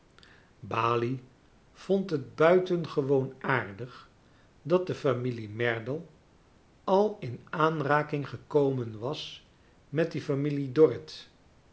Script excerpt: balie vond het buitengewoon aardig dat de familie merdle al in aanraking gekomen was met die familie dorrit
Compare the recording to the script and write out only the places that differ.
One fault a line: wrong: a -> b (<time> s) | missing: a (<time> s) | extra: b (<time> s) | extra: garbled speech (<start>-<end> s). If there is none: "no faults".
no faults